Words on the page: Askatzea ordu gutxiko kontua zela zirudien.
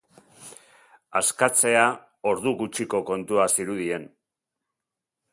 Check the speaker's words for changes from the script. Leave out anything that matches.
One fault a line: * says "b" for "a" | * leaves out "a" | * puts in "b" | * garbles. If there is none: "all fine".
* leaves out "zela"